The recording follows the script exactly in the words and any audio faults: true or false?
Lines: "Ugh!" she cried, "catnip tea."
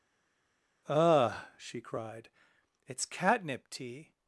false